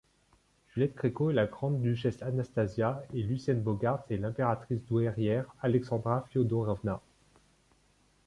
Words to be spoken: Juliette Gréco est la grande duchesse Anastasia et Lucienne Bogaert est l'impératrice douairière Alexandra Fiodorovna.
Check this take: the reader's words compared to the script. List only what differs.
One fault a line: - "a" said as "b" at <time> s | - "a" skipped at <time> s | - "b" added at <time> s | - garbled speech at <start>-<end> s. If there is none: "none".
none